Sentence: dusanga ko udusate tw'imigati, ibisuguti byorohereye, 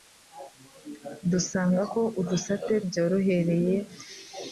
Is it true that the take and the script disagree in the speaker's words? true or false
true